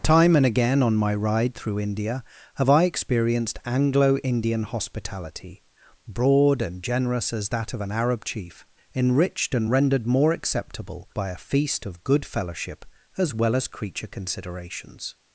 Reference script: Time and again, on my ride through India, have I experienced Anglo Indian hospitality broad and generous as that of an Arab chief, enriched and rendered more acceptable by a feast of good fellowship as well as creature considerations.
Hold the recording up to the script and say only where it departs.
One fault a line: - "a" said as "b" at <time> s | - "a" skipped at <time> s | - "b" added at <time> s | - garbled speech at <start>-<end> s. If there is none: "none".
none